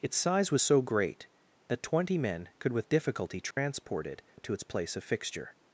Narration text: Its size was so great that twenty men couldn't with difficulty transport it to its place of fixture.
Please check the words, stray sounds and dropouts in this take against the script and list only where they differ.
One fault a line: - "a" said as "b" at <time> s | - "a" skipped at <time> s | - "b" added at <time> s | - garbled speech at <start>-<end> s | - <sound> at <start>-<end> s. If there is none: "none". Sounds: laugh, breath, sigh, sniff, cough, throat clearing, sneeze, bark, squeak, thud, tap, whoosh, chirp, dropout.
- "couldn't" said as "could" at 2.6 s
- dropout at 3.5-3.6 s